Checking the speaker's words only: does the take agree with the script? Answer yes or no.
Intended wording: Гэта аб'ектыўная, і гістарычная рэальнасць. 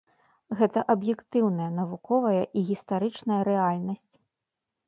no